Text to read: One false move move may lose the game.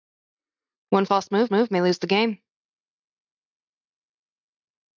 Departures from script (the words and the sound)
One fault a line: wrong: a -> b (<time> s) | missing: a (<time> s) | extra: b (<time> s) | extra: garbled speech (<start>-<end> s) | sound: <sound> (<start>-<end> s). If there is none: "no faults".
no faults